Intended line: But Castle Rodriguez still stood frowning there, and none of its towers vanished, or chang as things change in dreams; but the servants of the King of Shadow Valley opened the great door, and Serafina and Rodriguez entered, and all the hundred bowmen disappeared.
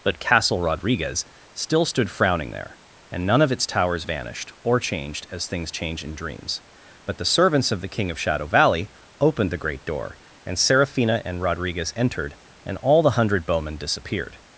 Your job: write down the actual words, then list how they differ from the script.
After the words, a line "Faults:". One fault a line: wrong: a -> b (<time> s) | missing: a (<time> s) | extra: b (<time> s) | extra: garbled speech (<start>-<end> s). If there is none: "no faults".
But Castle Rodriguez still stood frowning there, and none of its towers vanished, or changed as things change in dreams; but the servants of the King of Shadow Valley opened the great door, and Serafina and Rodriguez entered, and all the hundred bowmen disappeared.
Faults:
wrong: chang -> changed (4.8 s)